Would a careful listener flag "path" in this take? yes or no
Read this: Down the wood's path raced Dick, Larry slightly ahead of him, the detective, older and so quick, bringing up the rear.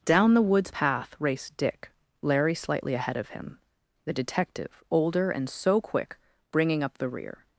no